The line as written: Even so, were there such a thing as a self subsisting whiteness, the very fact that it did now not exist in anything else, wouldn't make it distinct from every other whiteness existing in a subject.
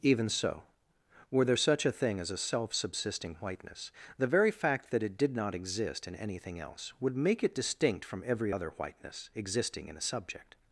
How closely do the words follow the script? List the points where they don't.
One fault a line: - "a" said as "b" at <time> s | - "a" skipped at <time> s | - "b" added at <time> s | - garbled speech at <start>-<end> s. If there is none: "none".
- "now" skipped at 5.3 s
- "wouldn't" said as "would" at 7.0 s